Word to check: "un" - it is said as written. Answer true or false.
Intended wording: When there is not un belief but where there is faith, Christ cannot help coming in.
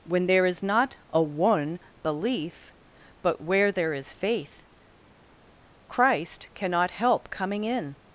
false